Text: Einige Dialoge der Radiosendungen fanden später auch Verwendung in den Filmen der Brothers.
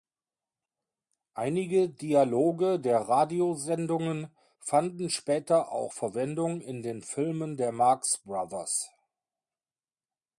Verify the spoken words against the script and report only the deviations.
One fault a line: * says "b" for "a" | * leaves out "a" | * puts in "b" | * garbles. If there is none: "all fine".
* puts in "Marx"